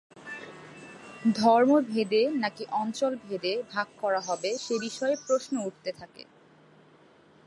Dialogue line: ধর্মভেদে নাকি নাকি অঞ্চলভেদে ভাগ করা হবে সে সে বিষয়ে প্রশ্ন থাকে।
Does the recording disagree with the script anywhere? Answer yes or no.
yes